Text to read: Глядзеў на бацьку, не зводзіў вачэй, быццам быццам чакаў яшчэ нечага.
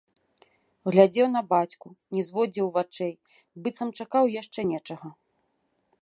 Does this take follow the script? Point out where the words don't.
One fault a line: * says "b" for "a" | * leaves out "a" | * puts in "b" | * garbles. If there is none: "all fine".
* leaves out "быццам"